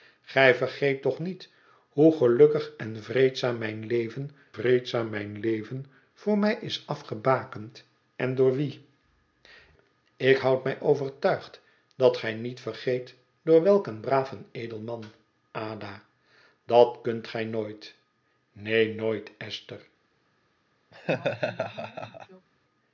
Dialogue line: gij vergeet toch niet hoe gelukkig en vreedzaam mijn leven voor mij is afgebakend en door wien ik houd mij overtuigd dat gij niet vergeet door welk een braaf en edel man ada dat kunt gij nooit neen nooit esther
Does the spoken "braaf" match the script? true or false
true